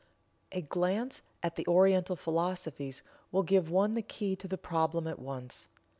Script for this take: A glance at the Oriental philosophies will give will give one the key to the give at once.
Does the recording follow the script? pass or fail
fail